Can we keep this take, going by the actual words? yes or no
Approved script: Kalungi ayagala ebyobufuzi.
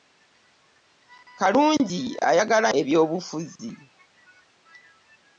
yes